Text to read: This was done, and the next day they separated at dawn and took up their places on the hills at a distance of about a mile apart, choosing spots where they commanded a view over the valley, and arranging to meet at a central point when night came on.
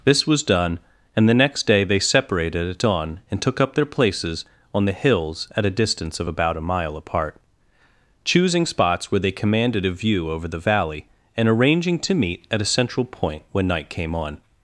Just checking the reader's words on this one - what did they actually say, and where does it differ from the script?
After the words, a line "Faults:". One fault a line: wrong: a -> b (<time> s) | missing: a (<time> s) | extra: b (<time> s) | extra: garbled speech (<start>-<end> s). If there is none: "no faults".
This was done, and the next day they separated at dawn and took up their places on the hills at a distance of about a mile apart, choosing spots where they commanded a view over the valley, and arranging to meet at a central point when night came on.
Faults:
no faults